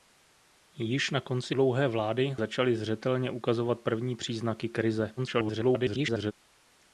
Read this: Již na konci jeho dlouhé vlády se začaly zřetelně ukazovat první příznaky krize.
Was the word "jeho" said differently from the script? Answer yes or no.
yes